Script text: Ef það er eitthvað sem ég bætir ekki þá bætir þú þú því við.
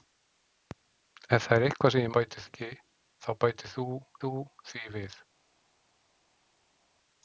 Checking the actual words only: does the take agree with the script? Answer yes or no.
yes